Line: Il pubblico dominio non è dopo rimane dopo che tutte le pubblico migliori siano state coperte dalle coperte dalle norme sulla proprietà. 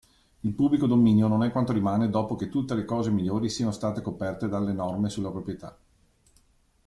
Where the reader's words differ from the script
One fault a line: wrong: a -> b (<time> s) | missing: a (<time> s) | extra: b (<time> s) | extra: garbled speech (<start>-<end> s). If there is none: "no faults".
wrong: dopo -> quanto (1.5 s)
wrong: pubblico -> cose (2.9 s)
missing: coperte dalle (4.7 s)